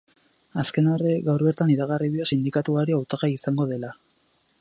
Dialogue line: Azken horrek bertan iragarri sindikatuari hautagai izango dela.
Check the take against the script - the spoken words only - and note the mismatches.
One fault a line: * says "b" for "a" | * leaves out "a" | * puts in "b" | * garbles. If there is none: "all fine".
* puts in "gaur"
* puts in "dio"